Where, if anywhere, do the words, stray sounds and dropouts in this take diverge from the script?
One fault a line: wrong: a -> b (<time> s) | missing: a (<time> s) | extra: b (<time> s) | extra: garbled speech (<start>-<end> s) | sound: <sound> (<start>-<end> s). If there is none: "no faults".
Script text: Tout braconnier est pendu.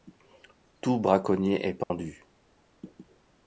sound: dropout (1.8-1.9 s)